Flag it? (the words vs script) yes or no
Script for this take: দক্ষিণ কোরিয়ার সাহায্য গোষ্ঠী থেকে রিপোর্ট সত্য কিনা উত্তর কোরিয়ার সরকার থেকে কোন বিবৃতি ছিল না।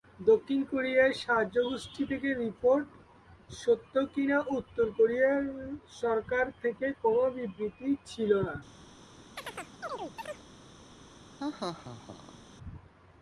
no